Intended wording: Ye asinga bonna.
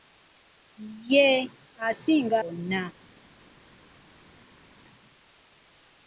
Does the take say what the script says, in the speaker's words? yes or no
yes